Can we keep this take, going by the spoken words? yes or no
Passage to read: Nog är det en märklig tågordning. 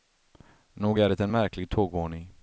yes